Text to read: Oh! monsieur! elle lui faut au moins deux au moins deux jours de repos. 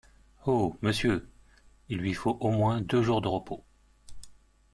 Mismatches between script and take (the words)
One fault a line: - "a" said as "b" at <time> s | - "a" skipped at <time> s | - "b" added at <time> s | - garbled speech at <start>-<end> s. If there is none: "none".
- "elle" said as "il" at 1.9 s
- "au moins deux" skipped at 3.0 s